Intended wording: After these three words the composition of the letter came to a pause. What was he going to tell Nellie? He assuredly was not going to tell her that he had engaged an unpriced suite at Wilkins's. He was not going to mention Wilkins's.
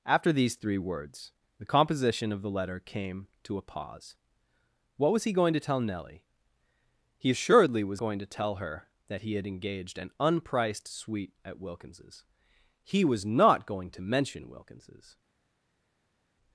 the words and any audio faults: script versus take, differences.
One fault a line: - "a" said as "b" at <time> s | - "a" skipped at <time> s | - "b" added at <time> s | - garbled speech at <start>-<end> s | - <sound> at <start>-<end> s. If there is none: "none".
- "not" skipped at 8.0 s